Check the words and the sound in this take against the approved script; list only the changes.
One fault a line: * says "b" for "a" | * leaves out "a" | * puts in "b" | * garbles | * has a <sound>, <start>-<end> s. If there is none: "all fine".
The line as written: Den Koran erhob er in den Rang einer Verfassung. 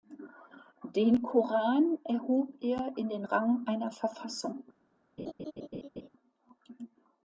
* has a laugh, 5.2-6.1 s